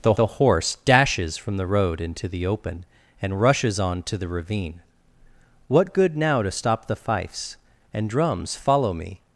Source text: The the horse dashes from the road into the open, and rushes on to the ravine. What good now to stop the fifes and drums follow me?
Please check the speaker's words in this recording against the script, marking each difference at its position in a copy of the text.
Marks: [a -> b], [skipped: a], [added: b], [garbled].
The the horse dashes from the road into the open, and rushes on to the ravine. What good now to stop the fifes and drums follow me?